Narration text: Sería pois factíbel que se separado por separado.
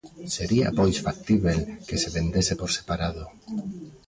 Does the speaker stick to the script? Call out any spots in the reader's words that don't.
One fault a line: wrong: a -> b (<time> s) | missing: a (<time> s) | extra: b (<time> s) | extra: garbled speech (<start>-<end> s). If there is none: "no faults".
wrong: separado -> vendese (2.2 s)